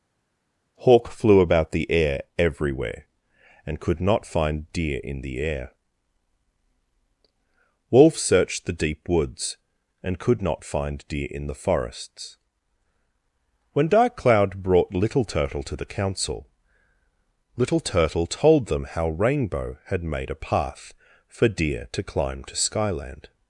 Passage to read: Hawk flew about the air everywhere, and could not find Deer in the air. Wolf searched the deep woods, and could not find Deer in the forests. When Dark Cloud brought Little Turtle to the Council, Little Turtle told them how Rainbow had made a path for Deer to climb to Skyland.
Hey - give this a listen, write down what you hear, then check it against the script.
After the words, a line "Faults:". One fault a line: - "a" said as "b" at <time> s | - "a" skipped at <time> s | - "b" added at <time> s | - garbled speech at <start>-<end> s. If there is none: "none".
Hawk flew about the air everywhere, and could not find Deer in the air. Wolf searched the deep woods, and could not find Deer in the forests. When Dark Cloud brought Little Turtle to the Council, Little Turtle told them how Rainbow had made a path for Deer to climb to Skyland.
Faults:
none